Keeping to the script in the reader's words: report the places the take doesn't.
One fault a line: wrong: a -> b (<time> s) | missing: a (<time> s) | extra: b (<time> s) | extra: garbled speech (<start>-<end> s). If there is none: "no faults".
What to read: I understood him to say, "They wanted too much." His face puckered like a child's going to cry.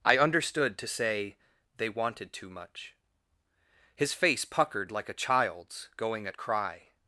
missing: him (0.8 s)
wrong: to -> at (6.2 s)